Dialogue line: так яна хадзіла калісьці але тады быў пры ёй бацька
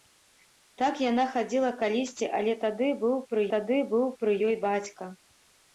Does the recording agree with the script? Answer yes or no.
no